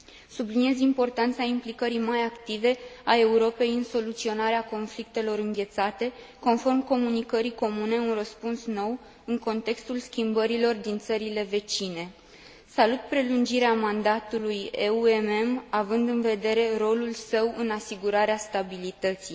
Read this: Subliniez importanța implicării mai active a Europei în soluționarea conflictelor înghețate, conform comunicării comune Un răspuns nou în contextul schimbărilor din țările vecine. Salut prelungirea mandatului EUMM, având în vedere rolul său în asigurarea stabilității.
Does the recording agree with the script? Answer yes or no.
yes